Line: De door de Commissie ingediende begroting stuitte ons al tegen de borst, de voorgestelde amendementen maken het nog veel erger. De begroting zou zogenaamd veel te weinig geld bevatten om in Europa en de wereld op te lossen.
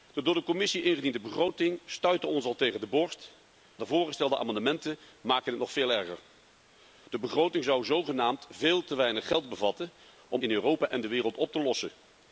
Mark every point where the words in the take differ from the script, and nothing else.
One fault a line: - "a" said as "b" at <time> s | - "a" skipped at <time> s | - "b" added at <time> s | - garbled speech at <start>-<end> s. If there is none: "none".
none